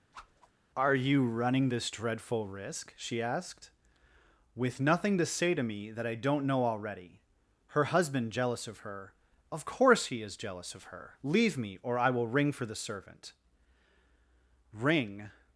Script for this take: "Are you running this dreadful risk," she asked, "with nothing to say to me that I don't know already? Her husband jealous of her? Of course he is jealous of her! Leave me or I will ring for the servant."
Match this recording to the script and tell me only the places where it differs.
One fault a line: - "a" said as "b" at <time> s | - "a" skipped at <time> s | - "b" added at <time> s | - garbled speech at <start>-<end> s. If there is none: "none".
- "Ring" added at 14.7 s